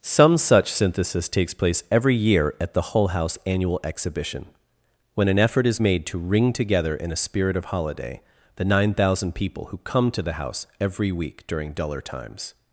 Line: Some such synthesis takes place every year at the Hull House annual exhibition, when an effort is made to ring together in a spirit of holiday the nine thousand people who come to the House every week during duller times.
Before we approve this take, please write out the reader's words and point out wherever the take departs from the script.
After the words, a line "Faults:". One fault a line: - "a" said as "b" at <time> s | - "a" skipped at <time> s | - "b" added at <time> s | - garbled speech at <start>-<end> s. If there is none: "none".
Some such synthesis takes place every year at the Hull House annual exhibition, when an effort is made to ring together in a spirit of holiday the nine thousand people who come to the House every week during duller times.
Faults:
none